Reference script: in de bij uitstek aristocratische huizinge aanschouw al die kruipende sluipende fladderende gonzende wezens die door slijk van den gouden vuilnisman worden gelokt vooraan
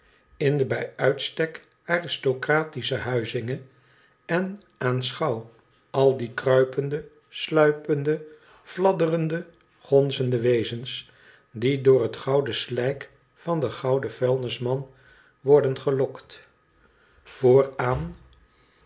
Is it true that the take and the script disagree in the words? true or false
true